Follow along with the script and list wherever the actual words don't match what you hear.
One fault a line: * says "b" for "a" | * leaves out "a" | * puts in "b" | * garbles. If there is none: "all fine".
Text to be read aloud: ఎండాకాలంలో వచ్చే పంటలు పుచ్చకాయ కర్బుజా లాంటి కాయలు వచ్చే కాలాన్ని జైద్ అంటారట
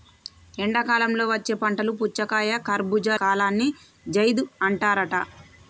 * leaves out "లాంటి కాయలు వచ్చే"